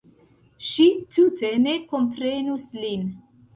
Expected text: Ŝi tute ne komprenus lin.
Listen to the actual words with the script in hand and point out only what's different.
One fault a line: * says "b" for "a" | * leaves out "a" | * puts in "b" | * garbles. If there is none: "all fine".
all fine